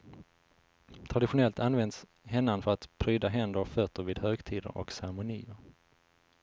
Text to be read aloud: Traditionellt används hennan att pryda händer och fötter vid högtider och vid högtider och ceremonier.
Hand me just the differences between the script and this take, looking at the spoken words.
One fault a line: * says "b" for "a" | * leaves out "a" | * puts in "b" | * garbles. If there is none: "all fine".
* puts in "för"
* leaves out "vid högtider och"